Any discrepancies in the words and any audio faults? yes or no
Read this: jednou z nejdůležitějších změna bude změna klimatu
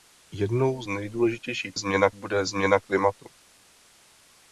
no